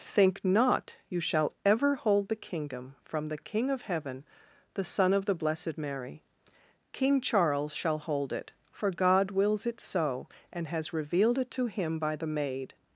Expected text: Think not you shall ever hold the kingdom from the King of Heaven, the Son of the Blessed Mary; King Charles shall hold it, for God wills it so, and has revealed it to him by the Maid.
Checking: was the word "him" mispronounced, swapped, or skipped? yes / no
no